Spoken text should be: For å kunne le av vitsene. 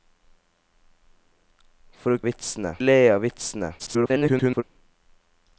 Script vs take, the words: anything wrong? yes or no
yes